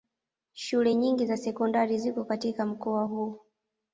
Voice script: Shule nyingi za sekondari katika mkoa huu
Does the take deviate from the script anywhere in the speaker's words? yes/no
yes